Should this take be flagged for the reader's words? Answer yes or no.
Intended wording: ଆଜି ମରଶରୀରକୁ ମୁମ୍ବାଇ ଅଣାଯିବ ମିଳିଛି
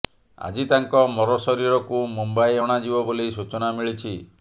yes